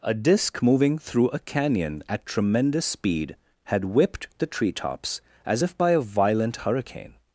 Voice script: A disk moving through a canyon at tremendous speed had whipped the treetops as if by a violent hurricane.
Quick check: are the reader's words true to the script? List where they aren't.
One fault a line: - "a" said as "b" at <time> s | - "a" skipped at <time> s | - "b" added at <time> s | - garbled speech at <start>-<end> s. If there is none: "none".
none